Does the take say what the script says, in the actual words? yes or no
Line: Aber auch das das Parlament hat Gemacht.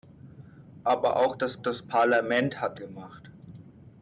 yes